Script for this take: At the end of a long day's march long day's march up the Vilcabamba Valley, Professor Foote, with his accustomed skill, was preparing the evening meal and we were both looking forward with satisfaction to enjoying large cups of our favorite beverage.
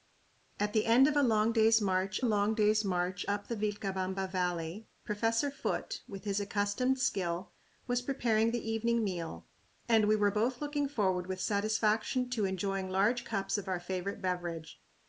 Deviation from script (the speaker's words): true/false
false